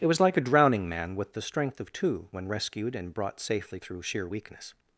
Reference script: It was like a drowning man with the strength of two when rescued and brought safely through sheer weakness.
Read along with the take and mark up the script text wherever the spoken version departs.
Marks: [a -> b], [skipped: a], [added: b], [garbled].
It was like a drowning man with the strength of two when rescued and brought safely through sheer weakness.